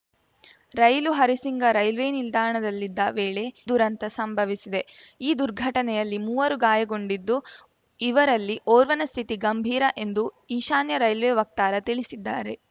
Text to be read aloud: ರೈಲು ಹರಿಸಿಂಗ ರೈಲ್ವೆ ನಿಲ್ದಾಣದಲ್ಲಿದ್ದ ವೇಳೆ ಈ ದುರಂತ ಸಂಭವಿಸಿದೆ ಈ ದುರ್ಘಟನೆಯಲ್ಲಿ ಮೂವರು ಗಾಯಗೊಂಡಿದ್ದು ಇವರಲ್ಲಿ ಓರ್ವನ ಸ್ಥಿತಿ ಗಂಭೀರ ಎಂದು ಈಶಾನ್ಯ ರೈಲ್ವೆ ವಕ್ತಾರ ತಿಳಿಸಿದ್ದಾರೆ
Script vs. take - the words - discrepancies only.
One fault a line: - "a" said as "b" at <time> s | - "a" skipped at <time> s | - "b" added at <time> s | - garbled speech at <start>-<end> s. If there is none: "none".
- "ಈ" skipped at 3.4 s